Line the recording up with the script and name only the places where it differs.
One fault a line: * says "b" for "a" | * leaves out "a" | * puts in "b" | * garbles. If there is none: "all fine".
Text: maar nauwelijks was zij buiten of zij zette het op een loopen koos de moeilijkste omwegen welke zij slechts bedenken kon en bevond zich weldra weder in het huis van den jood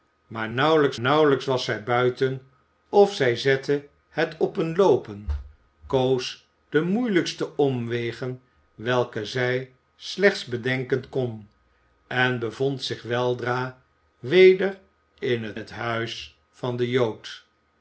* puts in "nauwelijks"
* puts in "het"